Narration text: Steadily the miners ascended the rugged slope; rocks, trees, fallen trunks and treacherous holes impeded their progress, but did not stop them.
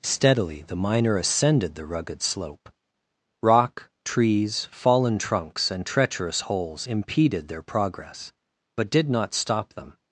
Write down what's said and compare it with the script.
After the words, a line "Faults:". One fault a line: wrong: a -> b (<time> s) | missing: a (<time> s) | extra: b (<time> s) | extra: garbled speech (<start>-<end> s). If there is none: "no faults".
Steadily the miner ascended the rugged slope; rock, trees, fallen trunks and treacherous holes impeded their progress, but did not stop them.
Faults:
wrong: miners -> miner (0.8 s)
wrong: rocks -> rock (3.4 s)